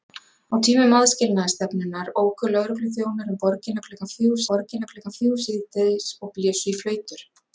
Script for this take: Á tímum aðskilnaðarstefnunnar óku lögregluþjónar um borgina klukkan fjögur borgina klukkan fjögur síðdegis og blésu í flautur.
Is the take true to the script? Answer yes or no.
yes